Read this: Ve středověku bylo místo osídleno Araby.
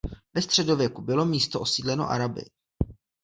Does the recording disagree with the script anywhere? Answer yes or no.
no